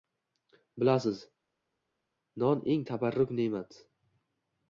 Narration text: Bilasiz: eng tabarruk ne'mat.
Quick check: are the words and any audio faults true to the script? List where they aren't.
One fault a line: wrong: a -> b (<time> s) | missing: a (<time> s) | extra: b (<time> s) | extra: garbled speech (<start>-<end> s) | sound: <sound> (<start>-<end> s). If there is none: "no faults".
extra: non (2.4 s)